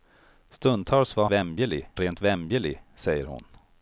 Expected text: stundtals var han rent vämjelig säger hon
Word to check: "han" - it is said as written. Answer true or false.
false